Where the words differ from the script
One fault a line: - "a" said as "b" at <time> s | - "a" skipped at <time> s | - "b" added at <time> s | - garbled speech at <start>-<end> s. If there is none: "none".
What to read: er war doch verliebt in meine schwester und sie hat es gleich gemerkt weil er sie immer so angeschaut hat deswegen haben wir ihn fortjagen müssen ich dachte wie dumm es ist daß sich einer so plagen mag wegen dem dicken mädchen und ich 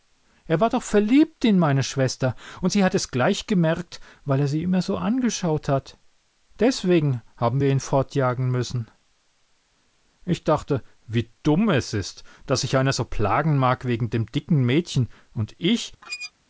none